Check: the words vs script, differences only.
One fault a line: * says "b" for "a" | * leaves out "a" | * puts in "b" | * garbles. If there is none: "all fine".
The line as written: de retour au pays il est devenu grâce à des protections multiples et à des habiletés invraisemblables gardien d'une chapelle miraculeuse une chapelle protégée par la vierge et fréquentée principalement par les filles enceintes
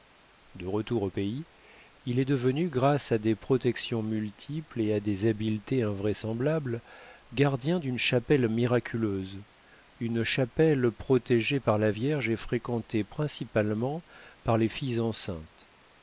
all fine